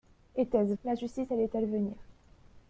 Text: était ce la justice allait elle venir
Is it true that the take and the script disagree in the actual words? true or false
false